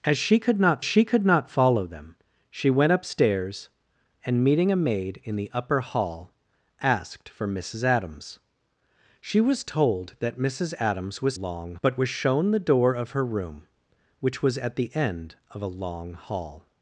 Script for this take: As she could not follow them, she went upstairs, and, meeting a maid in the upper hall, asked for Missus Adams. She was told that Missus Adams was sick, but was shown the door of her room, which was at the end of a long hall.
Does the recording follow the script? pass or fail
fail